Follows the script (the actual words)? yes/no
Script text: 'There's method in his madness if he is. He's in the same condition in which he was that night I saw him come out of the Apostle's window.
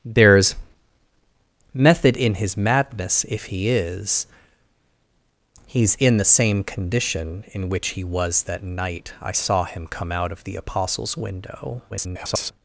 no